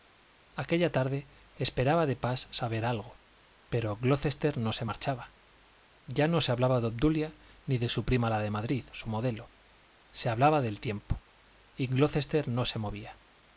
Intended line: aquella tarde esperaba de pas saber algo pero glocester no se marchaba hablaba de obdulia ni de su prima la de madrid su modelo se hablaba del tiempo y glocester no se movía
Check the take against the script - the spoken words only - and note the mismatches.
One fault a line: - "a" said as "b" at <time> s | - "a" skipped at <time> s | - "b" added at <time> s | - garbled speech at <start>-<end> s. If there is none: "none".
- "ya no se" added at 6.1 s